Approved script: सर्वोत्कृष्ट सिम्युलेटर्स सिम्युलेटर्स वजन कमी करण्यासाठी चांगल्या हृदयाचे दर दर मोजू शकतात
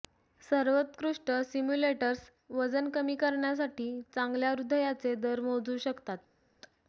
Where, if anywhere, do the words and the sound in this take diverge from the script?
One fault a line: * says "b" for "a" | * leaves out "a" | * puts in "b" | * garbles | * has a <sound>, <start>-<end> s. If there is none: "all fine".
* leaves out "सिम्युलेटर्स"
* leaves out "दर"